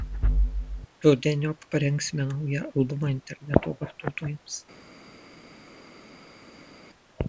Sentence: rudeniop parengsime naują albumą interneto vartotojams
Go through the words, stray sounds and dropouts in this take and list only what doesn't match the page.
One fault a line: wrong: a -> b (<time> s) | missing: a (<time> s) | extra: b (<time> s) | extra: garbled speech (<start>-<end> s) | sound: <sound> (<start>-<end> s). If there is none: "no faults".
no faults